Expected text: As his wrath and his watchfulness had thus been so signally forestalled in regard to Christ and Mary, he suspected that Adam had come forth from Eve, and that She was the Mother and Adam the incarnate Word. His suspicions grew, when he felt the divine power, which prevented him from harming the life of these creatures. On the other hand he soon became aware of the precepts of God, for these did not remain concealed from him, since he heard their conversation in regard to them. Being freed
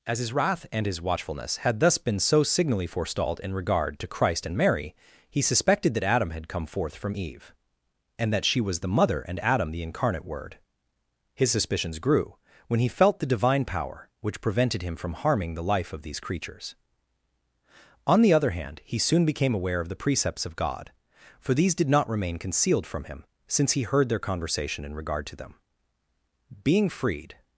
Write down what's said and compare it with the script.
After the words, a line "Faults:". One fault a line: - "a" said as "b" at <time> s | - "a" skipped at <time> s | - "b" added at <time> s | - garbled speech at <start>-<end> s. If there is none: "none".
As his wrath and his watchfulness had thus been so signally forestalled in regard to Christ and Mary, he suspected that Adam had come forth from Eve, and that She was the Mother and Adam the incarnate Word. His suspicions grew, when he felt the divine power, which prevented him from harming the life of these creatures. On the other hand he soon became aware of the precepts of God, for these did not remain concealed from him, since he heard their conversation in regard to them. Being freed
Faults:
none